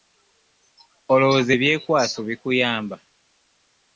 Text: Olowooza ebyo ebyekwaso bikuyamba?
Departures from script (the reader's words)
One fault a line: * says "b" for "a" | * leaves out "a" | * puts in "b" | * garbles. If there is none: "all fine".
* leaves out "ebyo"